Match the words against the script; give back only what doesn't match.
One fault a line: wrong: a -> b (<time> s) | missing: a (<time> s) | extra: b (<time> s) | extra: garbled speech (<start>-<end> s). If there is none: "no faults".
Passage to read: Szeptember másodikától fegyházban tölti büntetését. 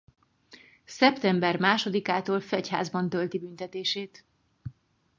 no faults